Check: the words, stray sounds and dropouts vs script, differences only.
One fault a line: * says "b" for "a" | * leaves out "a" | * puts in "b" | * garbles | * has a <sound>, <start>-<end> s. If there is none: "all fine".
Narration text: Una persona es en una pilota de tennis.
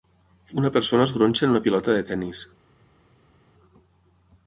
* puts in "gronxa"